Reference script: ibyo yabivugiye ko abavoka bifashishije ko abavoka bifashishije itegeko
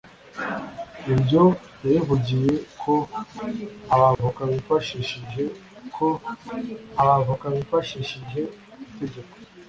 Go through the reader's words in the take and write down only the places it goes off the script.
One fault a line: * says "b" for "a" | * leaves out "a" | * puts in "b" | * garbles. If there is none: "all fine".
all fine